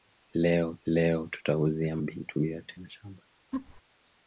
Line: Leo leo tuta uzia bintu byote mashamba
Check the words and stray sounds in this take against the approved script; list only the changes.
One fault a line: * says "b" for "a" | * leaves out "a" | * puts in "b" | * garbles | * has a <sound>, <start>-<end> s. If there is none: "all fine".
* has a laugh, 3.5-3.8 s